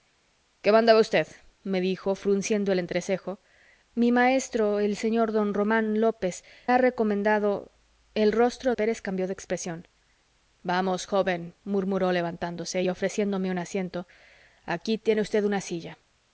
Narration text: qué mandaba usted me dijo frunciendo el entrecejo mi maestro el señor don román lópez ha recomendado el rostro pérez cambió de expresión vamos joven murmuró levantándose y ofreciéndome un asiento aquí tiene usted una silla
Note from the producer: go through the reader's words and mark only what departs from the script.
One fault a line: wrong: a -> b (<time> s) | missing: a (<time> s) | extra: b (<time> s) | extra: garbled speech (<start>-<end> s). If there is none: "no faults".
no faults